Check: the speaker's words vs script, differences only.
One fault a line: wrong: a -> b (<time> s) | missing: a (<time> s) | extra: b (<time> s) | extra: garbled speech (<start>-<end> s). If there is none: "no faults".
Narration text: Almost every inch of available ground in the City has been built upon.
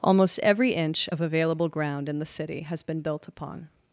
no faults